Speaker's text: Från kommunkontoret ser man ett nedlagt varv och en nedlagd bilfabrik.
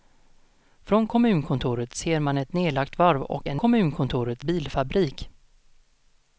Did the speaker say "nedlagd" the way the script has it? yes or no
no